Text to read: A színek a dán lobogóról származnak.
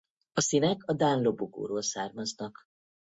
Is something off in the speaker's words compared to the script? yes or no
no